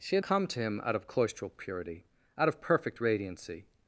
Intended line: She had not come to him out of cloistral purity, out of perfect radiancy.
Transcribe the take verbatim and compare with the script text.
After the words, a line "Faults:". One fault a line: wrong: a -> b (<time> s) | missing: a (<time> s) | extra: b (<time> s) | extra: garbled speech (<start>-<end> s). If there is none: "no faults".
She had come to him out of cloistral purity, out of perfect radiancy.
Faults:
missing: not (0.2 s)